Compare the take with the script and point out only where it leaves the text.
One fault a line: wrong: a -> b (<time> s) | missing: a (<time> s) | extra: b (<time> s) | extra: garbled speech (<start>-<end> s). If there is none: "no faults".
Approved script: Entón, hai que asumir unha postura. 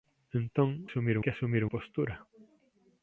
wrong: hai -> asumir (0.9 s)
missing: unha (1.6 s)